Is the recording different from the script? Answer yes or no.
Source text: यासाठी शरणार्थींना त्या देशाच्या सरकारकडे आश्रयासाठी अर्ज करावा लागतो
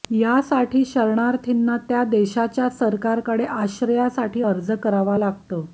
no